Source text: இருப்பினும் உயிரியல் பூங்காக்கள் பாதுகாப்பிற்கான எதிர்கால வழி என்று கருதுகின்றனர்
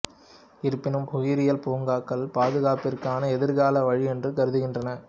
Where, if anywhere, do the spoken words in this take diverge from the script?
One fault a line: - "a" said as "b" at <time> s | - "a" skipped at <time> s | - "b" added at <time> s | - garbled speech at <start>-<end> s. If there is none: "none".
none